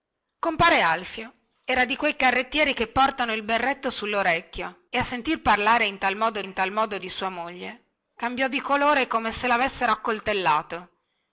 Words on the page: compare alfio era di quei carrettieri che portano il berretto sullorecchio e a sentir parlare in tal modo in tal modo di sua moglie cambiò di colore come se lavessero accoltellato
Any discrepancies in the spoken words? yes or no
no